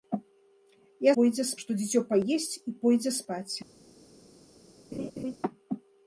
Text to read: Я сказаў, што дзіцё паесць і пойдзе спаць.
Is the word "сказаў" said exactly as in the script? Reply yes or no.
no